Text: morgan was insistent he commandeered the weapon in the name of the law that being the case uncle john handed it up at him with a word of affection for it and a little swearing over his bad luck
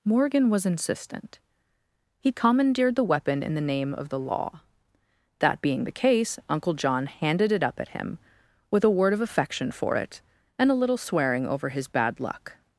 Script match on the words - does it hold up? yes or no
yes